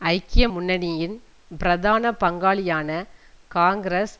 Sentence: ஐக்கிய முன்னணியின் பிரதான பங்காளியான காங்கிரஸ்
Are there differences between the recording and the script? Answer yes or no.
no